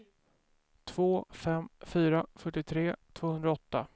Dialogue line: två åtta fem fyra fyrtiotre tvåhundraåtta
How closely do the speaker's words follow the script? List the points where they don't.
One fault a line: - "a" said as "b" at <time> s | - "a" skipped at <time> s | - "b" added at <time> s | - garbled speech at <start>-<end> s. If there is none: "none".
- "åtta" skipped at 1.2 s